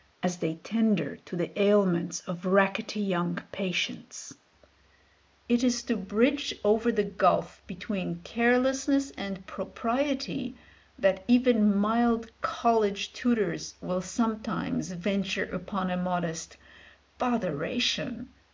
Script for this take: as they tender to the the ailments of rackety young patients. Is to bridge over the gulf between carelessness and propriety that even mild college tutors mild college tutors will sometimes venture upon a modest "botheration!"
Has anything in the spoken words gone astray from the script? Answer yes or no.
yes